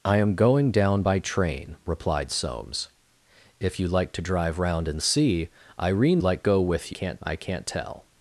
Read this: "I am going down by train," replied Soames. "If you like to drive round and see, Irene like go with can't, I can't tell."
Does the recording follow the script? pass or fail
pass